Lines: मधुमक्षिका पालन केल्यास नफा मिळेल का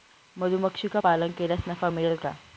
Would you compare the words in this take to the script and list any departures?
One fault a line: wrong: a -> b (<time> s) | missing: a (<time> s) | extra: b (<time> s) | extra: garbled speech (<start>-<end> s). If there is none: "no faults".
no faults